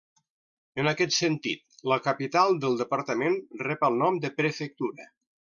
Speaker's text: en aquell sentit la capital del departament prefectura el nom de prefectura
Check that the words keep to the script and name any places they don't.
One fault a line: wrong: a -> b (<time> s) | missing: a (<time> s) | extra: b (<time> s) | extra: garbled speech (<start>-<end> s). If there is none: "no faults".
wrong: aquell -> aquest (0.9 s)
wrong: prefectura -> rep (3.7 s)